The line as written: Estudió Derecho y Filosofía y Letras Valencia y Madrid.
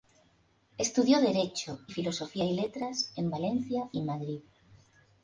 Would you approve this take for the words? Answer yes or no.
no